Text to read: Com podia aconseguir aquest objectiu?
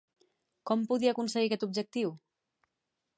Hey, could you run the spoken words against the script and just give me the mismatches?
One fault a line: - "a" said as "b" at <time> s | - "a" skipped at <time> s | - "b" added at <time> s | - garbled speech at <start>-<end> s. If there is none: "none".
none